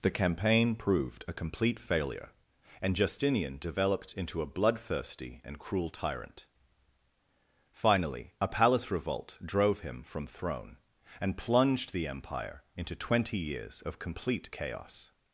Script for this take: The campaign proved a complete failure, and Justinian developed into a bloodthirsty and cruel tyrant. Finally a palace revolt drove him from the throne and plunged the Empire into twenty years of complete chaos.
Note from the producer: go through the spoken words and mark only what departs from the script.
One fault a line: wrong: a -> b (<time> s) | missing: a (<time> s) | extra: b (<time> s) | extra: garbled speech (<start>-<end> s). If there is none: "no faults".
missing: the (10.3 s)